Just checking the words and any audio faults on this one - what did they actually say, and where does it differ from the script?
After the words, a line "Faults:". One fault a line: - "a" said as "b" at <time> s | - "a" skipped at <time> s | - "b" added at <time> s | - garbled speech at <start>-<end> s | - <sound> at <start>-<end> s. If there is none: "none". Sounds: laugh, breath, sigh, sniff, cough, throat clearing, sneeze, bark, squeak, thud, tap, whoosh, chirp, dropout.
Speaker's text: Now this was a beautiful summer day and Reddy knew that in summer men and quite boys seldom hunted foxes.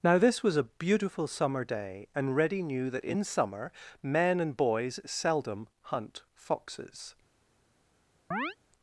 Now this was a beautiful summer day and Reddy knew that in summer men and boys seldom hunt foxes.
Faults:
- "quite" skipped at 4.6 s
- "hunted" said as "hunt" at 5.8 s
- chirp at 8.3-8.6 s